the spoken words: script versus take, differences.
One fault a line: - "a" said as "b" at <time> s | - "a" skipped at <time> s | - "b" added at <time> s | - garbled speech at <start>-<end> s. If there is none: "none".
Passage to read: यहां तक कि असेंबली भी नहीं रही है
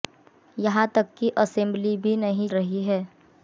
none